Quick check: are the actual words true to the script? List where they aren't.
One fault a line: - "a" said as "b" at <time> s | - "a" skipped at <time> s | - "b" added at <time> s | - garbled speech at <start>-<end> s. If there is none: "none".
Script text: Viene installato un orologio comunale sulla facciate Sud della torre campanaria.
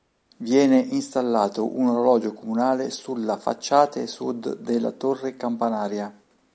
none